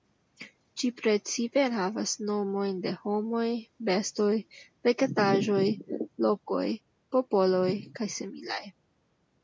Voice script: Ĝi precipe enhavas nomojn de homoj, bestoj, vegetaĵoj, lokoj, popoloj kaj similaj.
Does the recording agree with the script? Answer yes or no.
yes